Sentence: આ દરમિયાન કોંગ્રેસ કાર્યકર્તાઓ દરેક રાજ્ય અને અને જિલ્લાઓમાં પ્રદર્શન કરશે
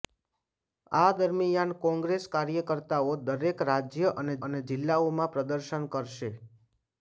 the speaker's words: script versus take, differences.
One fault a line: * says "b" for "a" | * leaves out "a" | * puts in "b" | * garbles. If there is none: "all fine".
all fine